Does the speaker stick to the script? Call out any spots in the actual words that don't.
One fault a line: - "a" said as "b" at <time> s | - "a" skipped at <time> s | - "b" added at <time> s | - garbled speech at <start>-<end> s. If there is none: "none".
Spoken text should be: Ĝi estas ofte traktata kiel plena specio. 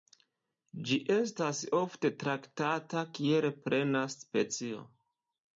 none